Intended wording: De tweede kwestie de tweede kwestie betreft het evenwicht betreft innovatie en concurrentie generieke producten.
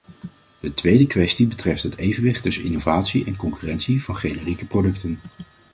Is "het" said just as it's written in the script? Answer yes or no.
yes